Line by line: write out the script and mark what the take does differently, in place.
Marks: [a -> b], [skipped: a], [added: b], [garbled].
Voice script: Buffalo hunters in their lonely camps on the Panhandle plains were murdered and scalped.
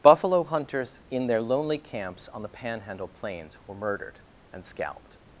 Buffalo hunters in their lonely camps on the Panhandle plains were murdered and scalped.